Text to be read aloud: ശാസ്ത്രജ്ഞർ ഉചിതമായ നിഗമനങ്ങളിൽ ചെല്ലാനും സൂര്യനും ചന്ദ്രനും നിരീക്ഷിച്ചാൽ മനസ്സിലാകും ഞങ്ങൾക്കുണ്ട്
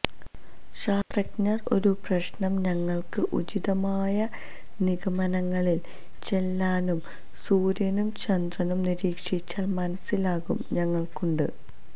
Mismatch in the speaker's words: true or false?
true